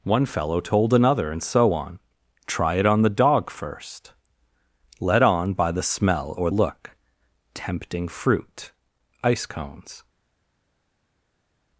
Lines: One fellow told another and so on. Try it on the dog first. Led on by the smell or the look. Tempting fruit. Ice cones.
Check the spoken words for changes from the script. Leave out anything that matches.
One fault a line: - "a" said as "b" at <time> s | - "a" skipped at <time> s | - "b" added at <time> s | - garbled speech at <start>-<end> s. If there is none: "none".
- "the" skipped at 6.5 s